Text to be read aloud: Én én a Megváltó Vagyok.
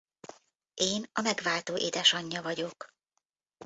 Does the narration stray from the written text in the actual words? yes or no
yes